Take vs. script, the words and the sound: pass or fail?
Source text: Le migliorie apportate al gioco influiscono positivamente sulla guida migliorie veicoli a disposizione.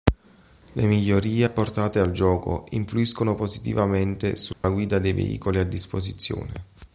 fail